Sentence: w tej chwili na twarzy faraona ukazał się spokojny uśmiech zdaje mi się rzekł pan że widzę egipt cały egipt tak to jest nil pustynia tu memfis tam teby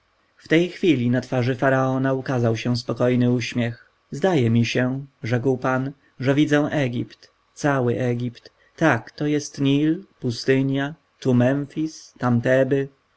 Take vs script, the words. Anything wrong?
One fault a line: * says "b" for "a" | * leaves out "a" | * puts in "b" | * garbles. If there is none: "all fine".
all fine